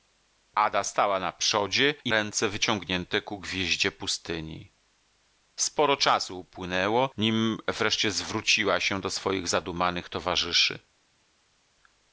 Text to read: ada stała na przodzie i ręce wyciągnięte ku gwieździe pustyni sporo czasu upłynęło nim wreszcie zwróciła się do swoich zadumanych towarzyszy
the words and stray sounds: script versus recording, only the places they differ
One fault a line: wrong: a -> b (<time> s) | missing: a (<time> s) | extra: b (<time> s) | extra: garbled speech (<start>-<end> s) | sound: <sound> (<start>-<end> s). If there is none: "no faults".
no faults